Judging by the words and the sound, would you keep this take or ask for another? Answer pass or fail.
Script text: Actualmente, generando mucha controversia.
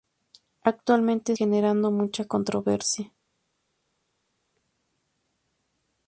pass